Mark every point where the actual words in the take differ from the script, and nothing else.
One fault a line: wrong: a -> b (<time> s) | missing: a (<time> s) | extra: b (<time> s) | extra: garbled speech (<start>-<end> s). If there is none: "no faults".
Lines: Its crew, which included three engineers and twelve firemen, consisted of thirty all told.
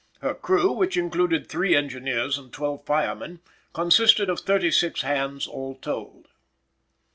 wrong: Its -> Her (0.2 s)
extra: six hands (4.7 s)